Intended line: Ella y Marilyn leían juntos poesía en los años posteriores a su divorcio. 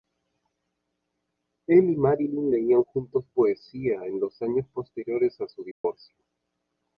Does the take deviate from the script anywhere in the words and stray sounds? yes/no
yes